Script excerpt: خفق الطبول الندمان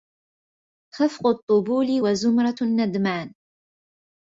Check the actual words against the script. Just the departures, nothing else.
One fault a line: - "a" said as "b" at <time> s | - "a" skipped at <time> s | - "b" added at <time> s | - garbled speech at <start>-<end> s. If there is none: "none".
- "وزمرة" added at 2.0 s